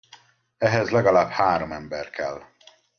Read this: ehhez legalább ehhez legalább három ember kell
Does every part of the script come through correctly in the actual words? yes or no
no